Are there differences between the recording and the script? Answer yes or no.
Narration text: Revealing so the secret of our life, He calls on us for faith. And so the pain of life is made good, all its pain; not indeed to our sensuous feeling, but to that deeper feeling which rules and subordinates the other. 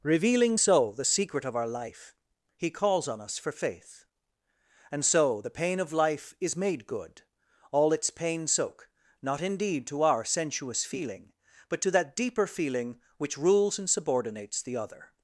yes